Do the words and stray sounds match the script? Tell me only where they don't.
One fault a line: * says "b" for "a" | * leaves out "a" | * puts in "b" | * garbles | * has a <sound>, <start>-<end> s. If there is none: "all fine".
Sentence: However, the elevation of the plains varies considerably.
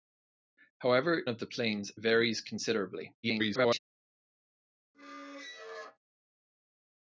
* leaves out "the elevation"
* garbles
* has a squeak, 4.9-6.0 s